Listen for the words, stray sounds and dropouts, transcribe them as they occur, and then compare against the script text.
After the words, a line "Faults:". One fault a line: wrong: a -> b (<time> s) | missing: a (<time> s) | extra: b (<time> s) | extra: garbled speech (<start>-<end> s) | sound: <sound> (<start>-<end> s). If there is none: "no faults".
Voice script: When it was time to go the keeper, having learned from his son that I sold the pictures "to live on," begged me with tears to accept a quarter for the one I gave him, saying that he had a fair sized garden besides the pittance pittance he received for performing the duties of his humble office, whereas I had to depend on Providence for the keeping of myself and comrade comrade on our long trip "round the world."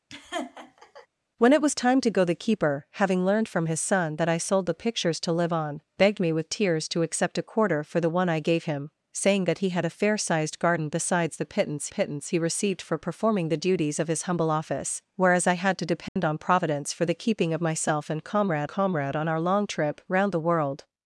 When it was time to go the keeper, having learned from his son that I sold the pictures "to live on," begged me with tears to accept a quarter for the one I gave him, saying that he had a fair sized garden besides the pittance pittance he received for performing the duties of his humble office, whereas I had to depend on Providence for the keeping of myself and comrade comrade on our long trip "round the world."
Faults:
sound: laugh (0.1-1.1 s)
sound: dropout (16.1-16.2 s)